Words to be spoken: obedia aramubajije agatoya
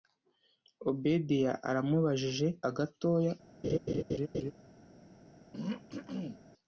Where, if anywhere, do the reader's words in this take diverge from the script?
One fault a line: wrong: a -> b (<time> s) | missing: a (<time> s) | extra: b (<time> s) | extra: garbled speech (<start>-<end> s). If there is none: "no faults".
no faults